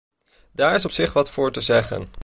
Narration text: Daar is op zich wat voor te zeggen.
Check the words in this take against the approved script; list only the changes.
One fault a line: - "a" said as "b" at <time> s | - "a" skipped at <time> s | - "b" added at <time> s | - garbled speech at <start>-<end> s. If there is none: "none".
none